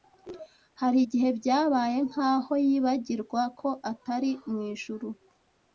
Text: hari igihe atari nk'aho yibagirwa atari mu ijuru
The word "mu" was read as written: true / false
true